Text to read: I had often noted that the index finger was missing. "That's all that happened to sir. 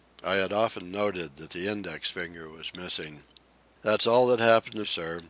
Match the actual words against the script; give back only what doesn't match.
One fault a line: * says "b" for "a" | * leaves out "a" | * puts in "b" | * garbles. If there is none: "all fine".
all fine